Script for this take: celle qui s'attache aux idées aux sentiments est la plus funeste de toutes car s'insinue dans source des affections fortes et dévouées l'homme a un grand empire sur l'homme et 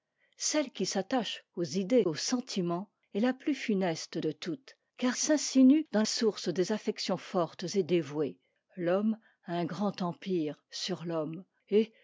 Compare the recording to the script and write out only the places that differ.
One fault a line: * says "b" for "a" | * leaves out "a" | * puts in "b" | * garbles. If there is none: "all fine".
all fine